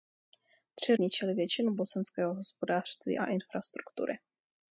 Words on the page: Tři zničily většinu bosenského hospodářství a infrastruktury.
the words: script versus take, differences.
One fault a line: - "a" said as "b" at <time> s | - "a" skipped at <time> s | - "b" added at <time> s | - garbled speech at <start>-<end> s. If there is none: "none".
none